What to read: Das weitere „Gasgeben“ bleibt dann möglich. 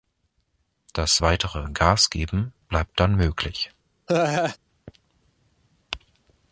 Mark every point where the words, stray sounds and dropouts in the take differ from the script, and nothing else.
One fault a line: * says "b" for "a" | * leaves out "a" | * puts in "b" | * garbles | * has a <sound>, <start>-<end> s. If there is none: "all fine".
* has a laugh, 4.1-4.6 s